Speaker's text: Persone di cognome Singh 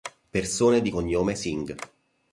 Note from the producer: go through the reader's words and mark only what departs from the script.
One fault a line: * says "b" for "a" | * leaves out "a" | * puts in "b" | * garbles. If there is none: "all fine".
all fine